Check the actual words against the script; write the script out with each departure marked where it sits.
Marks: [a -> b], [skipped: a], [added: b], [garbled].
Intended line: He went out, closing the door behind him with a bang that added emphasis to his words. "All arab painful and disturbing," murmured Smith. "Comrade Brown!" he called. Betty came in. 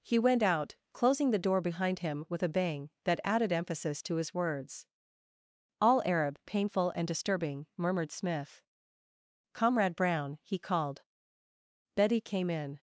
He went out, closing the door behind him with a bang that added emphasis to his words. "All arab painful and disturbing," murmured Smith. "Comrade Brown!" he called. Betty came in.